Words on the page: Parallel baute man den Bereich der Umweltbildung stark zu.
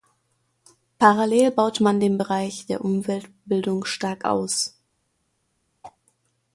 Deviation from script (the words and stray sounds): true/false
true